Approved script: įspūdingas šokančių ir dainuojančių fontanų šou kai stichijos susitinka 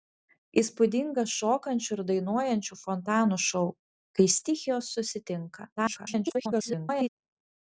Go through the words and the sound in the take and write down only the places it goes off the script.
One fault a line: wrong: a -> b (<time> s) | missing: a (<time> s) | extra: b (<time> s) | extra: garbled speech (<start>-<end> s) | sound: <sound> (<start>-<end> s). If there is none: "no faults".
extra: garbled speech (5.8-7.1 s)